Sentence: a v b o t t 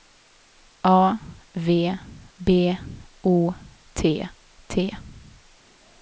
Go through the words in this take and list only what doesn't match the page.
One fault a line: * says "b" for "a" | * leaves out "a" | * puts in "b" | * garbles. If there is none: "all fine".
all fine